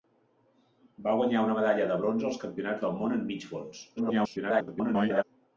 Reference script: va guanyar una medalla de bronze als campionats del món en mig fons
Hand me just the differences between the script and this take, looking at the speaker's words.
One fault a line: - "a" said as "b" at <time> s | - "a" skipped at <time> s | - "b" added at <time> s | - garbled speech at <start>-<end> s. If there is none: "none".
- garbled speech at 4.0-5.2 s